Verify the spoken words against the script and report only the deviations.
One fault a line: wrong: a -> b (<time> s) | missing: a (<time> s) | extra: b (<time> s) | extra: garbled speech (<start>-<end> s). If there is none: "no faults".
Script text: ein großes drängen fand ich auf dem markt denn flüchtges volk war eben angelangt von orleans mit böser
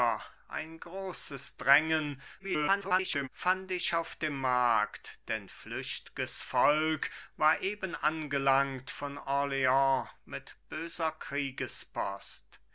extra: garbled speech (2.4-3.3 s)